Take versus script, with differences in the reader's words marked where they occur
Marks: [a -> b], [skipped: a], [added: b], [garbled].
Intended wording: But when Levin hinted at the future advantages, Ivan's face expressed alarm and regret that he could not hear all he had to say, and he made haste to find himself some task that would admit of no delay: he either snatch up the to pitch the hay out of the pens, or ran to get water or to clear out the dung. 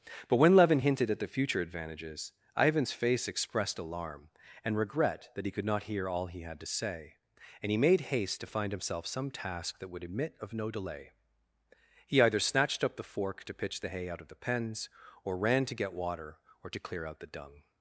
But when Levin hinted at the future advantages, Ivan's face expressed alarm and regret that he could not hear all he had to say, and he made haste to find himself some task that would admit of no delay: he either [snatch -> snatched] up the [added: fork] to pitch the hay out of the pens, or ran to get water or to clear out the dung.